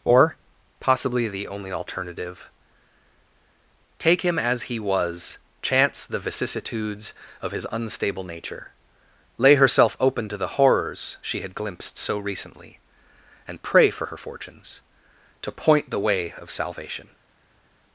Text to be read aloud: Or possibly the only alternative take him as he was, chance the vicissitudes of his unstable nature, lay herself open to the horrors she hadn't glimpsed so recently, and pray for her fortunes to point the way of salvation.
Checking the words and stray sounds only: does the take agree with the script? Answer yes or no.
no